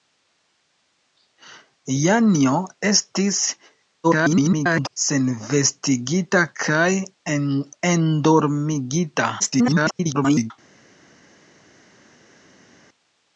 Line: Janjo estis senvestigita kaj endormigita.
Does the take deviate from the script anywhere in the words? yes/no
yes